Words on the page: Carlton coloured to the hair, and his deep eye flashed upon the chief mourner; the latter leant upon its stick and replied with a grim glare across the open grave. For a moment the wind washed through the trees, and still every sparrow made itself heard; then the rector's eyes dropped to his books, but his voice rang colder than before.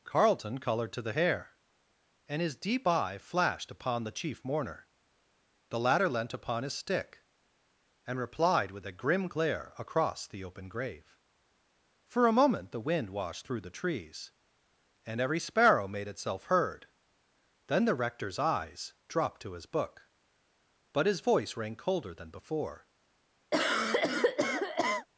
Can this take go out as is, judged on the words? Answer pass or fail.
fail